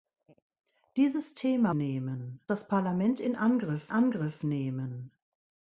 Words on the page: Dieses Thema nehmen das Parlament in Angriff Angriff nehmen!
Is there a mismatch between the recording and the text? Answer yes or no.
no